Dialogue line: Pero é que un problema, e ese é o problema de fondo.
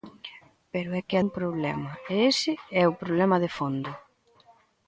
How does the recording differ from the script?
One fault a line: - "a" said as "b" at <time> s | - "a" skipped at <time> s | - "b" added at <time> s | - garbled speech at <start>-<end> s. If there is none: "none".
none